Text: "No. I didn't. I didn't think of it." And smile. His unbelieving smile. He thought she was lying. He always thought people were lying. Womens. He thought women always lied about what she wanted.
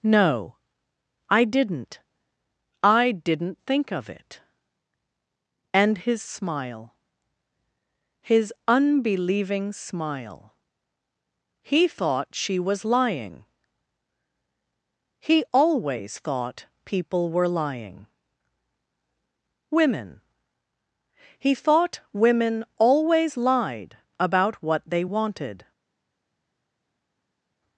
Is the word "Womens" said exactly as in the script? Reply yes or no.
no